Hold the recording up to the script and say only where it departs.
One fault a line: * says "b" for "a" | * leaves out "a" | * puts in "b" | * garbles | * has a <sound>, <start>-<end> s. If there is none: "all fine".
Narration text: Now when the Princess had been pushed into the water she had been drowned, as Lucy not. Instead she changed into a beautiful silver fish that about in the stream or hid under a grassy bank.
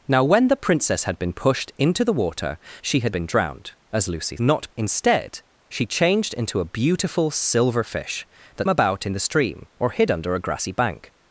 all fine